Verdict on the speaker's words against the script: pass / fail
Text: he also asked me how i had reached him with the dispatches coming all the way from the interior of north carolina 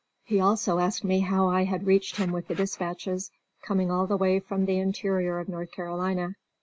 pass